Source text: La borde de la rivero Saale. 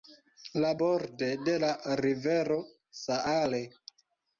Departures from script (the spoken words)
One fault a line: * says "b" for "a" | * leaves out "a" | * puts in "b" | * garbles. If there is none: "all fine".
all fine